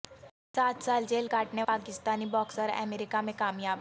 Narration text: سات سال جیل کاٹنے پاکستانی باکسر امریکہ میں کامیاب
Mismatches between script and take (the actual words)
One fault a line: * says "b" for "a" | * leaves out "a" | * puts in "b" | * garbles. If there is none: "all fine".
all fine